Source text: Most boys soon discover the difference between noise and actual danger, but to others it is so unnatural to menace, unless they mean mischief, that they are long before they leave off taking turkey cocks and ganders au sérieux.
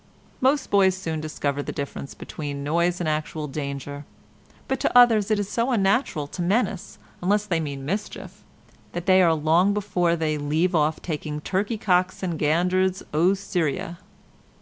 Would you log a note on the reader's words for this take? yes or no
no